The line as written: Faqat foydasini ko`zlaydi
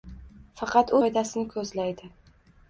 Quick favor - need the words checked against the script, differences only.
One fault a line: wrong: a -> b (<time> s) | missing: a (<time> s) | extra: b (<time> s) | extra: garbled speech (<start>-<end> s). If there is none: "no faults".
no faults